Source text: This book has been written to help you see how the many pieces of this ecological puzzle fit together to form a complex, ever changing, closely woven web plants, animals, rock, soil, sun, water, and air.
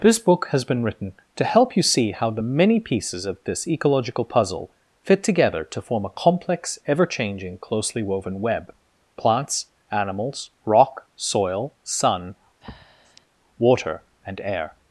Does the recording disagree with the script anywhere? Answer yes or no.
no